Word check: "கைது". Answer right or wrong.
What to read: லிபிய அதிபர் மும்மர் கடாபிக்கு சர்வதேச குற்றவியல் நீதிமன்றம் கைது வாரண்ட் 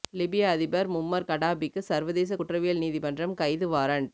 right